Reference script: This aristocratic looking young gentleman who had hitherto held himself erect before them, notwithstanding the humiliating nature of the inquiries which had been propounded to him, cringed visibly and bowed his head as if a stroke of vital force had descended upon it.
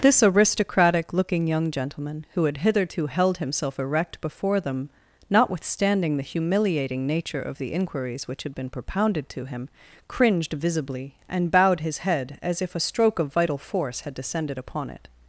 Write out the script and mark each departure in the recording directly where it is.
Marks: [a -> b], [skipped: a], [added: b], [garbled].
This aristocratic looking young gentleman who had hitherto held himself erect before them, notwithstanding the humiliating nature of the inquiries which had been propounded to him, cringed visibly and bowed his head as if a stroke of vital force had descended upon it.